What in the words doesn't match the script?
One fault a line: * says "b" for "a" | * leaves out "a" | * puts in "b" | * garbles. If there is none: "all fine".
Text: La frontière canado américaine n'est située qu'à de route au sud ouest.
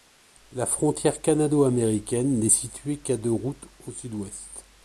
all fine